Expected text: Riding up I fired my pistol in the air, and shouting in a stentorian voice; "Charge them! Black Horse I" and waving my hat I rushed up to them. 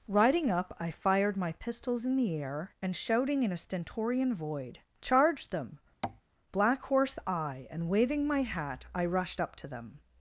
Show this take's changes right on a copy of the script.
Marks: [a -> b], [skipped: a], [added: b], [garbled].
Riding up I fired my [pistol -> pistols] in the air, and shouting in a stentorian [voice; -> void] "Charge them! Black Horse I" and waving my hat I rushed up to them.